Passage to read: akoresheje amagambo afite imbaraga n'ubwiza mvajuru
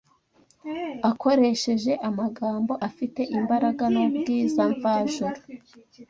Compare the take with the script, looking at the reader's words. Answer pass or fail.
pass